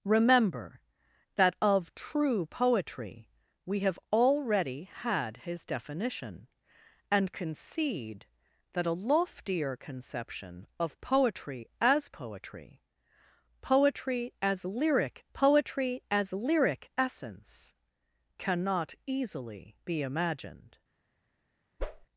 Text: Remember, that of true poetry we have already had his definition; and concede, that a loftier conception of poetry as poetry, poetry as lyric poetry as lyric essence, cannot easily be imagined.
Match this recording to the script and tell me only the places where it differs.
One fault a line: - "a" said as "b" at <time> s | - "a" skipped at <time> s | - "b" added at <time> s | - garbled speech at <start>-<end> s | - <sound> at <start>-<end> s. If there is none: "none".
- whoosh at 21.8-22.1 s